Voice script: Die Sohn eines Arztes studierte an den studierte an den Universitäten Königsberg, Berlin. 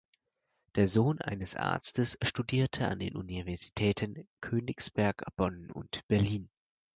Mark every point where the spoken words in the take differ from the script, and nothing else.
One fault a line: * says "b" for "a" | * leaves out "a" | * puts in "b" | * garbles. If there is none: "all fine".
* says "Der" for "Die"
* says "Universitäten Königsberg Bonn und" for "studierte an den Universitäten Königsberg"